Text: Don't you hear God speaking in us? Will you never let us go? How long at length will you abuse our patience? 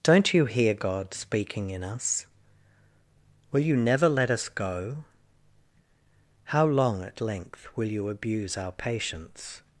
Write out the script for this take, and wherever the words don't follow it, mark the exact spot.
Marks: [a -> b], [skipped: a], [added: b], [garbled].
Don't you hear God speaking in us? Will you never let us go? How long at length will you abuse our patience?